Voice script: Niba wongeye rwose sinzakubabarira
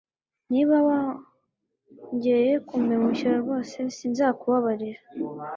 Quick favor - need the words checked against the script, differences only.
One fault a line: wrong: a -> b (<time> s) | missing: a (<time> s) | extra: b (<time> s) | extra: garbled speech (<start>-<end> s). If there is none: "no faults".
extra: kumpemukira (2.7 s)